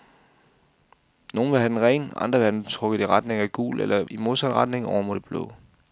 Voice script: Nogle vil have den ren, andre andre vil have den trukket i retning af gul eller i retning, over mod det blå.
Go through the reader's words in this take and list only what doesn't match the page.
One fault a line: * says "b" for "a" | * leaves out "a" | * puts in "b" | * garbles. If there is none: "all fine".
* leaves out "andre"
* puts in "modsat"